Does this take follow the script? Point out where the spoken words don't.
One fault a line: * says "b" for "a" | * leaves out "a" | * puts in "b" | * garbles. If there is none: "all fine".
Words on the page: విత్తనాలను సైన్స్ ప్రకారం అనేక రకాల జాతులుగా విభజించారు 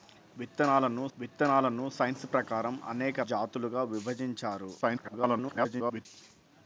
* puts in "విత్తనాలను"
* leaves out "రకాల"
* garbles